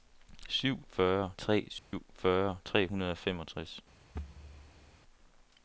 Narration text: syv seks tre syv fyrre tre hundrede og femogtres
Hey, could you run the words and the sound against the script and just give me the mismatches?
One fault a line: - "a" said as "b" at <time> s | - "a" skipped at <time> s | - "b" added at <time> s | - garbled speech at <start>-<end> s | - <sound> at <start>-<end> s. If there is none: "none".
- "seks" said as "fyrre" at 0.9 s
- dropout at 1.8-1.9 s
- thud at 4.1-4.9 s